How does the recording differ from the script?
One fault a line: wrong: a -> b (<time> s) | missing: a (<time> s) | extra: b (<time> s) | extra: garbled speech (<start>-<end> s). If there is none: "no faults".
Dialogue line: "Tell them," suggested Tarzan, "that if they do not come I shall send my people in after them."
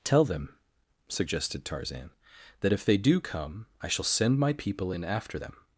missing: not (3.2 s)